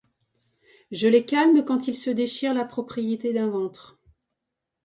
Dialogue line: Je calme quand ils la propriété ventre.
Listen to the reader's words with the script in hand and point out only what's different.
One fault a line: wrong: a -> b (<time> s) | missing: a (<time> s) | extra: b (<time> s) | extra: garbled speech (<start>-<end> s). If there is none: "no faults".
extra: les (1.1 s)
extra: se déchirent (1.9 s)
extra: d'un (3.3 s)